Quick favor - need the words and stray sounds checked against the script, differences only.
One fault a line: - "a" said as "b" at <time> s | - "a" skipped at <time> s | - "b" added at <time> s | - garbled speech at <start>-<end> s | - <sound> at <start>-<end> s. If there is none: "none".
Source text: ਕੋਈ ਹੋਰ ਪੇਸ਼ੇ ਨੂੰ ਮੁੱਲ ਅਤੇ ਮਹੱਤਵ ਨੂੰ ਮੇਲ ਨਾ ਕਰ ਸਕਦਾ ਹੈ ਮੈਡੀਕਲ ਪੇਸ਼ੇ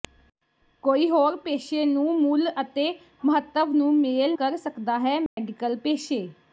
- "ਨਾ" skipped at 4.4 s
- dropout at 5.3-5.4 s